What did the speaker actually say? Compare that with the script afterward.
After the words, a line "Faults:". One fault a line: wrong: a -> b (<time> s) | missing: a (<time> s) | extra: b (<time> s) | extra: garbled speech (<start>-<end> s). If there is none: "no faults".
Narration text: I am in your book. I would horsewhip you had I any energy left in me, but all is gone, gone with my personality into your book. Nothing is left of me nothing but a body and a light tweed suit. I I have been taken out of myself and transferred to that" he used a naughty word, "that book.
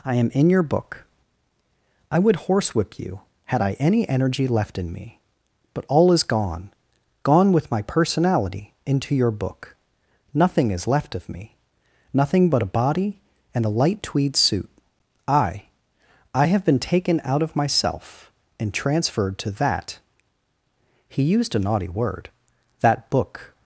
I am in your book. I would horsewhip you had I any energy left in me, but all is gone, gone with my personality into your book. Nothing is left of me nothing but a body and a light tweed suit. I I have been taken out of myself and transferred to that" he used a naughty word, "that book.
Faults:
no faults